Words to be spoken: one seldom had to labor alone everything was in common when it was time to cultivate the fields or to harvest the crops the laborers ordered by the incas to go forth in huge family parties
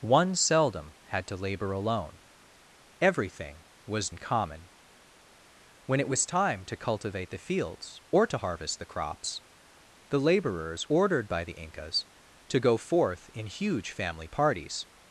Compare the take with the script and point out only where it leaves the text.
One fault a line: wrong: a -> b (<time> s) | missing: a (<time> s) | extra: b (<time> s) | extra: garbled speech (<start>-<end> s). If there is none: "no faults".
no faults